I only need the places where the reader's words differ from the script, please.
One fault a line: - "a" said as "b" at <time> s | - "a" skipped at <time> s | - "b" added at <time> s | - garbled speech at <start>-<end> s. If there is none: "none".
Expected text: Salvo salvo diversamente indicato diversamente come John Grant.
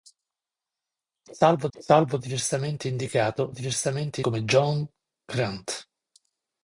none